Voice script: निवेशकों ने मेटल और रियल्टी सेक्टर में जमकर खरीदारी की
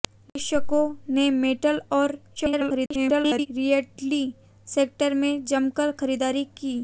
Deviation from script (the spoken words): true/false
true